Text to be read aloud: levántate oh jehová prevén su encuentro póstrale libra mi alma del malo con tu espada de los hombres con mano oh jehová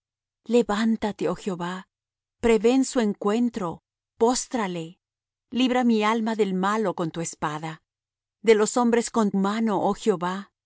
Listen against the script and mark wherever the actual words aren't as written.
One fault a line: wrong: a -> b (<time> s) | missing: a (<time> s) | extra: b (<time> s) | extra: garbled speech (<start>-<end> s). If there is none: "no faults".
no faults